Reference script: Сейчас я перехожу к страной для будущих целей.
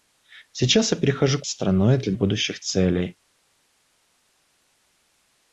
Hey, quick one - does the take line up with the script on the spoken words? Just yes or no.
yes